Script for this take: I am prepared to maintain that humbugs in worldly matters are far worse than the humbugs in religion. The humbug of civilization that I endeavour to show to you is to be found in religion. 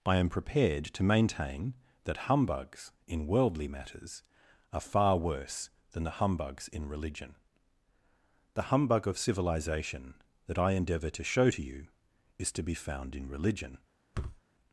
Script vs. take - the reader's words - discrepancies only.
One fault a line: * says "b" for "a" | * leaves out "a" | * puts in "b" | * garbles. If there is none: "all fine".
all fine